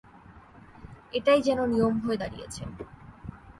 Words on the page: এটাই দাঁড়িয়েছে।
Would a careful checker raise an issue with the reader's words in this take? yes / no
yes